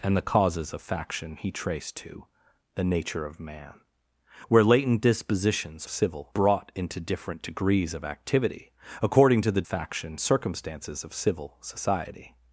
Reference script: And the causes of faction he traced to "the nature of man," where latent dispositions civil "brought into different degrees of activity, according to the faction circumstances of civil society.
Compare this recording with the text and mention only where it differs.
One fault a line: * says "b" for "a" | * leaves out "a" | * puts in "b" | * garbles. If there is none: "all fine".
all fine